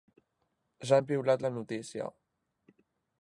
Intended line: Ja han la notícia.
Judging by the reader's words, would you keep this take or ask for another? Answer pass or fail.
fail